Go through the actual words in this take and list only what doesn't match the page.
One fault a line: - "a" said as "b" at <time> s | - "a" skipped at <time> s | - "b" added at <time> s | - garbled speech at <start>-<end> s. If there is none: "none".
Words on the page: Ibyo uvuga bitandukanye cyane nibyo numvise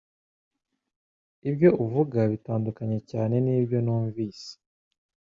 none